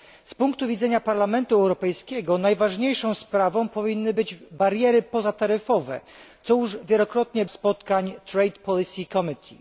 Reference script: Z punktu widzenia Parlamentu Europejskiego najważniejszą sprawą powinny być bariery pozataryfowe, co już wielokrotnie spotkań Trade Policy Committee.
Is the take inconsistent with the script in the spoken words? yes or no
no